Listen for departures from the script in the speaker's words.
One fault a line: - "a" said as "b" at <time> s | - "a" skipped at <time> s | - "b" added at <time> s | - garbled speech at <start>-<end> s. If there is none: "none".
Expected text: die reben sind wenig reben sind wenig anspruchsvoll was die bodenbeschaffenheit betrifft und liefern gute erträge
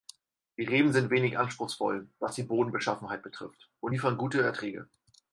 - "reben sind wenig" skipped at 1.4 s